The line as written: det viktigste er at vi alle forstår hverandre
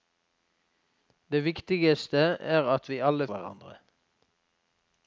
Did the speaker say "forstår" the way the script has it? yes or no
no